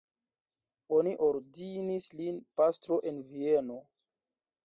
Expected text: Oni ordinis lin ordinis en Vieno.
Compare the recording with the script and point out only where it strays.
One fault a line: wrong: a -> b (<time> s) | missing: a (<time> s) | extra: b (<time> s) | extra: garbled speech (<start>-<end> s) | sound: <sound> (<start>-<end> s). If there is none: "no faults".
wrong: ordinis -> pastro (2.6 s)